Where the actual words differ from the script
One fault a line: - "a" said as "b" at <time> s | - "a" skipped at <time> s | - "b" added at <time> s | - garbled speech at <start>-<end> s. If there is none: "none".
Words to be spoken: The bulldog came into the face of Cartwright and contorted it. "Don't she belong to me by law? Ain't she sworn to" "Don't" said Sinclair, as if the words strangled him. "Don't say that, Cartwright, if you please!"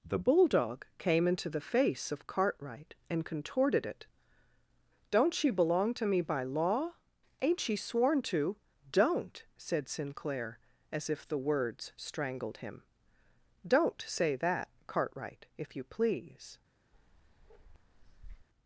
none